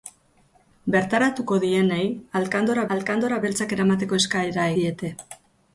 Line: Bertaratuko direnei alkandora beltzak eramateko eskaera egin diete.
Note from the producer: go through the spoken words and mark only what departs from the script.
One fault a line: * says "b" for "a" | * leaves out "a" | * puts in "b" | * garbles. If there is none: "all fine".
* puts in "alkandora"
* leaves out "egin"